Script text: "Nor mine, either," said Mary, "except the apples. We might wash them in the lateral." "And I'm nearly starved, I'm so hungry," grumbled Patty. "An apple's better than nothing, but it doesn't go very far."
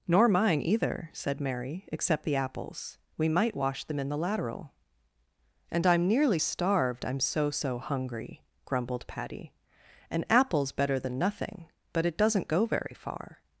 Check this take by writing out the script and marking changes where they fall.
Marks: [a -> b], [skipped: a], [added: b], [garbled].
"Nor mine, either," said Mary, "except the apples. We might wash them in the lateral." "And I'm nearly starved, I'm so [added: so] hungry," grumbled Patty. "An apple's better than nothing, but it doesn't go very far."